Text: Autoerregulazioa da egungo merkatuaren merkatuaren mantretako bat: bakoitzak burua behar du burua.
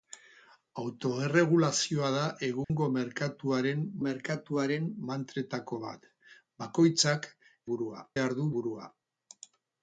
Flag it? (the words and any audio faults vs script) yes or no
yes